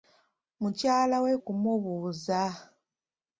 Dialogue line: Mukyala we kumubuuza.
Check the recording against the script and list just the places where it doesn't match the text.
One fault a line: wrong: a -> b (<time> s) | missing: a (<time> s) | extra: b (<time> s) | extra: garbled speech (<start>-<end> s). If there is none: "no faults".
no faults